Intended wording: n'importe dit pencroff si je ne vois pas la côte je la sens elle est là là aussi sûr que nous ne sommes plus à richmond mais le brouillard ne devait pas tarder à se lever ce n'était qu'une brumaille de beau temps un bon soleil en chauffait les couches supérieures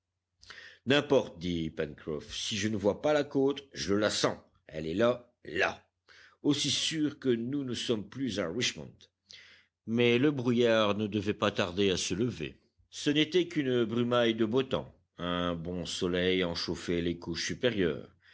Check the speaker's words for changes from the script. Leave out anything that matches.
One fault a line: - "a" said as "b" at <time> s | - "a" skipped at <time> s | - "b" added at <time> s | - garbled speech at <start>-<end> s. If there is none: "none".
none